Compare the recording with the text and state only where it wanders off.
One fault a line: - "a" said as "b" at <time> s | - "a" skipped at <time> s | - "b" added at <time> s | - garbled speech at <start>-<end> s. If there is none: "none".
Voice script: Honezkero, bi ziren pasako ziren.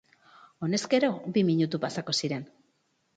- "ziren" said as "minutu" at 1.5 s